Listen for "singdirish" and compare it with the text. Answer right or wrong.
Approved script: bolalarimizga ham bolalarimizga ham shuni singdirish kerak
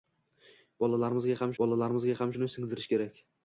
right